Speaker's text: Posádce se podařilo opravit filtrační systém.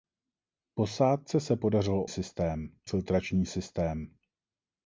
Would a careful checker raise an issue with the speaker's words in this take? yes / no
yes